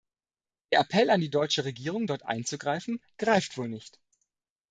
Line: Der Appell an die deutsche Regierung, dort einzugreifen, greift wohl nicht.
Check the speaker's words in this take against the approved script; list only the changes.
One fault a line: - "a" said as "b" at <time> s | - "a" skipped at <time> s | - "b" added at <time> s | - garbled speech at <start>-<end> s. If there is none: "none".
none